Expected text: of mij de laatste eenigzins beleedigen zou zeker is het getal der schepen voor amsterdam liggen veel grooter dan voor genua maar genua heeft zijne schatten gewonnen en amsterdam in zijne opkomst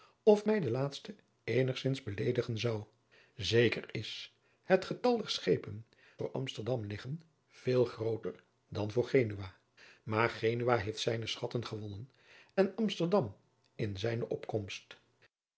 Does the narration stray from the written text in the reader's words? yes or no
no